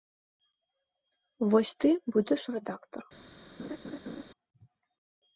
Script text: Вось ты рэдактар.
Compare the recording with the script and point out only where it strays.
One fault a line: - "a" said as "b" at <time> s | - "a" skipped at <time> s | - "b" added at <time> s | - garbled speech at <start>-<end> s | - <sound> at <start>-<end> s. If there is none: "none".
- "будзеш" added at 2.1 s
- laugh at 3.6-4.2 s